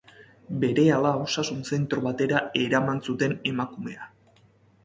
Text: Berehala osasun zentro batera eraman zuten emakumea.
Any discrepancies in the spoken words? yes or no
no